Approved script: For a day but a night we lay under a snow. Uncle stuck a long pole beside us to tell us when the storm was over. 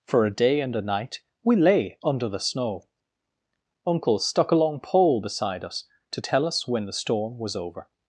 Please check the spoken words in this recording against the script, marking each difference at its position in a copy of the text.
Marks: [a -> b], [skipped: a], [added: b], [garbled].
For a day [but -> and] a night we lay under [a -> the] snow. Uncle stuck a long pole beside us to tell us when the storm was over.